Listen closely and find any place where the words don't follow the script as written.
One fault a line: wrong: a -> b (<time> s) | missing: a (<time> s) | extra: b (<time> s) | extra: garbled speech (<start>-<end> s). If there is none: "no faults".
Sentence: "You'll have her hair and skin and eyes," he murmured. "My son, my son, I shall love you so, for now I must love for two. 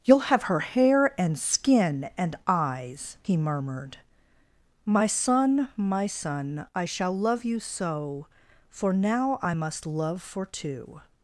no faults